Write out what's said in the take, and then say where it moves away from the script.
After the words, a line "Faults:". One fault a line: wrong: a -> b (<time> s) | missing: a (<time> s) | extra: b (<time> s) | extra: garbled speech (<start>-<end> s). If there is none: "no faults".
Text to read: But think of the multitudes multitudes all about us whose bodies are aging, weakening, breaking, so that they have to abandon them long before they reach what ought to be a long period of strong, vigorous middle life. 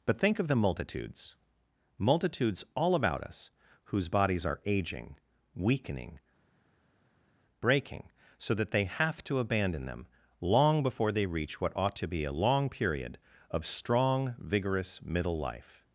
But think of the multitudes multitudes all about us whose bodies are aging, weakening, breaking, so that they have to abandon them long before they reach what ought to be a long period of strong, vigorous middle life.
Faults:
no faults